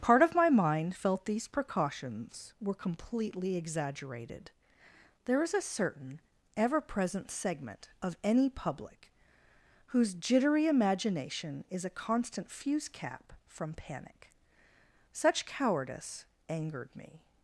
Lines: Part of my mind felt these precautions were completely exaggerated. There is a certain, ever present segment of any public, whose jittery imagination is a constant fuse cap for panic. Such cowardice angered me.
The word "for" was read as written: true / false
false